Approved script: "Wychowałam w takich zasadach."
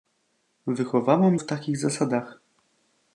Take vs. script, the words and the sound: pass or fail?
pass